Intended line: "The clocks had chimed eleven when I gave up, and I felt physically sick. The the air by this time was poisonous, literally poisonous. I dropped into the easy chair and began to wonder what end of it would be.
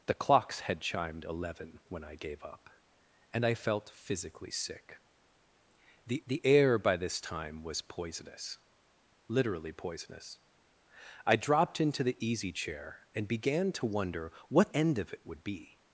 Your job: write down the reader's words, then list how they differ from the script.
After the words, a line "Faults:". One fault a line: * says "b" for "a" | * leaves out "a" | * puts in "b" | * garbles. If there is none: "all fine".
"The clocks had chimed eleven when I gave up, and I felt physically sick. The the air by this time was poisonous, literally poisonous. I dropped into the easy chair and began to wonder what end of it would be.
Faults:
all fine